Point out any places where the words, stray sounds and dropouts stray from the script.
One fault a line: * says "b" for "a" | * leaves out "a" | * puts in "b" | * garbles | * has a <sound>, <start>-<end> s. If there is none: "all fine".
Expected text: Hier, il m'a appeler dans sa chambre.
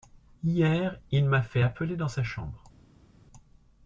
* puts in "fait"